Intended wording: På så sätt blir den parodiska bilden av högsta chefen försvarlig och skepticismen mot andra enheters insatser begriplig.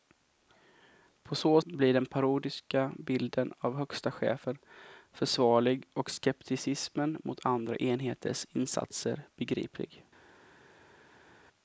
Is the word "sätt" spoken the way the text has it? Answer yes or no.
no